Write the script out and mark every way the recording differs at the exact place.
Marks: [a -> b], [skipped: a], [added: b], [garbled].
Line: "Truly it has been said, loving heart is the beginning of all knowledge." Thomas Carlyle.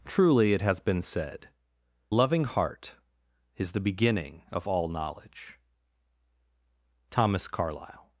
"Truly it has been said, loving heart is the beginning of all knowledge." Thomas Carlyle.